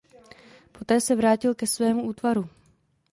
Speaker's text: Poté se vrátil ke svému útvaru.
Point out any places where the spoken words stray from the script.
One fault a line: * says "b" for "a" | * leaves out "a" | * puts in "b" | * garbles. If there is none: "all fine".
all fine